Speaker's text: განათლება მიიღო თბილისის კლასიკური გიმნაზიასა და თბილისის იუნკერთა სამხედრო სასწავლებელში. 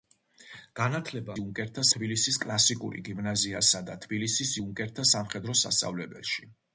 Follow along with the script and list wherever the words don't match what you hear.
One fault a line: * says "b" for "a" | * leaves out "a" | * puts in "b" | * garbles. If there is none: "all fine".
* says "იუნკერთა" for "მიიღო"